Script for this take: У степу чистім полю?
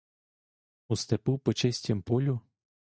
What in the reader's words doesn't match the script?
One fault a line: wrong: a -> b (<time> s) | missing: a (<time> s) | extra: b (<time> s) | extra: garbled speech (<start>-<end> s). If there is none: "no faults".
extra: по (1.4 s)